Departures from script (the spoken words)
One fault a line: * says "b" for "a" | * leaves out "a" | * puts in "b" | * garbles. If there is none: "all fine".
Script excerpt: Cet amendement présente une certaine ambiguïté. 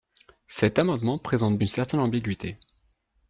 all fine